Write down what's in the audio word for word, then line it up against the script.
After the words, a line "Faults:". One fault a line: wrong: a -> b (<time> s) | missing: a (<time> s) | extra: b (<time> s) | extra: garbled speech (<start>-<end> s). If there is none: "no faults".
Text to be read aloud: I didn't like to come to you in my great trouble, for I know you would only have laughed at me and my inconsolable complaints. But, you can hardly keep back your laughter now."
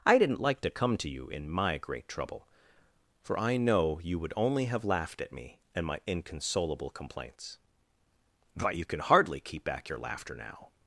I didn't like to come to you in my great trouble, for I know you would only have laughed at me and my inconsolable complaints. But, you can hardly keep back your laughter now."
Faults:
no faults